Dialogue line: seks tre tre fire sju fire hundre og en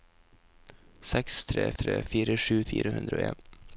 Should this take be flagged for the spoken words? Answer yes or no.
no